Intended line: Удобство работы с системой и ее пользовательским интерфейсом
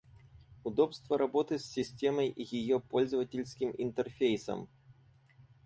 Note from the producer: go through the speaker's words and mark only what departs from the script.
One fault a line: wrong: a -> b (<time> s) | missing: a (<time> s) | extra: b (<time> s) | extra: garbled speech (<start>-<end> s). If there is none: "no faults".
no faults